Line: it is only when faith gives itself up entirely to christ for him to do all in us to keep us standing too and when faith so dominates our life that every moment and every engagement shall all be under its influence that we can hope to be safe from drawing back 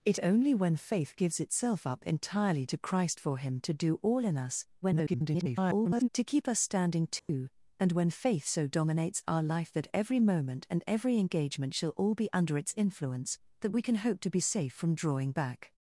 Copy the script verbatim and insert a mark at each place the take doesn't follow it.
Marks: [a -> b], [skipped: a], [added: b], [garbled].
it [skipped: is] only when faith gives itself up entirely to christ for him to do all in us [garbled] to keep us standing too and when faith so dominates our life that every moment and every engagement shall all be under its influence that we can hope to be safe from drawing back